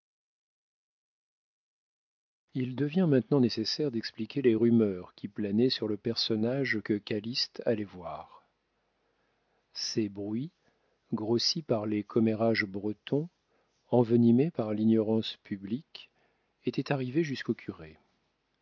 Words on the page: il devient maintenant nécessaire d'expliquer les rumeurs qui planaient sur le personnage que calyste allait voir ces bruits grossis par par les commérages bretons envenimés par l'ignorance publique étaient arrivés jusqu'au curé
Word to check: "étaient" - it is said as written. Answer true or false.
true